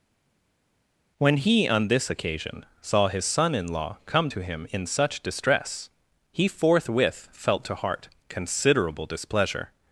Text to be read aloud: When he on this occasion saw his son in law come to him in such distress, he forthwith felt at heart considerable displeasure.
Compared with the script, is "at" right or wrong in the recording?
wrong